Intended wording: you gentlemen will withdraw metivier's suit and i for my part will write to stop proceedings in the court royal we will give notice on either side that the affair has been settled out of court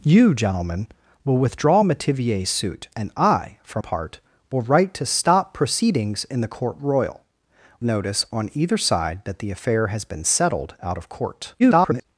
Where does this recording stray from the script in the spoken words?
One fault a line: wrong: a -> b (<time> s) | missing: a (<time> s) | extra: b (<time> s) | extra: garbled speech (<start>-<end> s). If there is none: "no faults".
missing: my (3.8 s)
missing: we will give (7.2 s)
extra: garbled speech (11.6-12.0 s)